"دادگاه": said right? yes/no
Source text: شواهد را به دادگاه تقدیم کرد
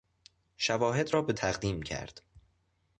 no